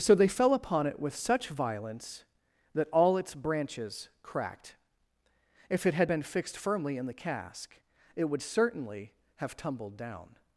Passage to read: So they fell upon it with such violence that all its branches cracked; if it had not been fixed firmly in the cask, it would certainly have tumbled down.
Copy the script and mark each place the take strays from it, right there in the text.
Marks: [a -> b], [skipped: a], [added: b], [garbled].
So they fell upon it with such violence that all its branches cracked; if it had [skipped: not] been fixed firmly in the cask, it would certainly have tumbled down.